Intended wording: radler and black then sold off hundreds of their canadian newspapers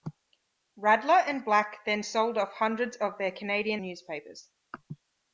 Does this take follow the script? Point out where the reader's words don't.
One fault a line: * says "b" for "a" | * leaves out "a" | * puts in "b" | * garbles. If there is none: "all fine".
all fine